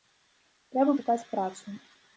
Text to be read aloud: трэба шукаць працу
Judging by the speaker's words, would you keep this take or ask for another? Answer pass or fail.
pass